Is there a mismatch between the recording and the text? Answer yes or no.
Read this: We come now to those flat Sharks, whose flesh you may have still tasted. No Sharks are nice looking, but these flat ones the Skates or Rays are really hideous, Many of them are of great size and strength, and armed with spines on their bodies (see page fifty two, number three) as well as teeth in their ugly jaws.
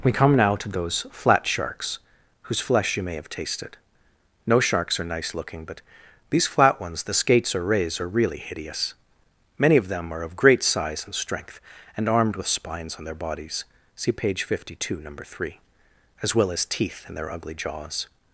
yes